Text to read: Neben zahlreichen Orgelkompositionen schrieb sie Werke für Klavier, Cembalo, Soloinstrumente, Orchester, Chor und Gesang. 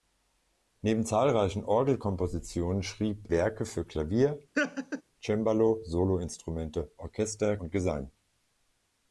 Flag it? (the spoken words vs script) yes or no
yes